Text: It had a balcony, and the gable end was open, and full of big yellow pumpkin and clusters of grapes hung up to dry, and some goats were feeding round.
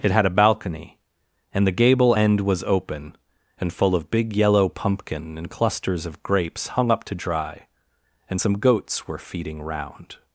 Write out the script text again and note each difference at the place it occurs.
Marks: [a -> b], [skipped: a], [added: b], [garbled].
It had a balcony, and the gable end was open, and full of big yellow pumpkin and clusters of grapes hung up to dry, and some goats were feeding round.